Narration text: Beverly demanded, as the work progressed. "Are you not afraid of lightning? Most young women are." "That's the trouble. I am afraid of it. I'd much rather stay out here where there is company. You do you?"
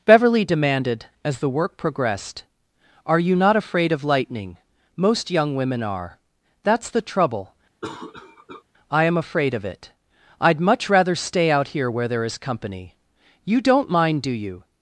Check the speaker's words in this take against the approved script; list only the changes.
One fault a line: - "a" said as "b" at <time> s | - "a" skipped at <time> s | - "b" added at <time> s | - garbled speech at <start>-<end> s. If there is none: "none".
- "don't mind" added at 13.6 s